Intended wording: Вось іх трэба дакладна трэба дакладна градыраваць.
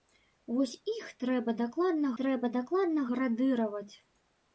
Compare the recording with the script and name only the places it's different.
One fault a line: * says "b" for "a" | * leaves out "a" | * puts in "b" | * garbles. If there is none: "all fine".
all fine